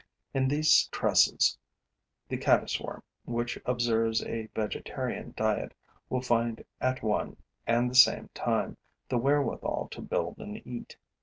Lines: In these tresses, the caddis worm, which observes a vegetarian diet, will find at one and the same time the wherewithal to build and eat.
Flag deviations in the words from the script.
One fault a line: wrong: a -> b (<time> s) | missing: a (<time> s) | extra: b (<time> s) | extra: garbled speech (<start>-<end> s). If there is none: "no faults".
no faults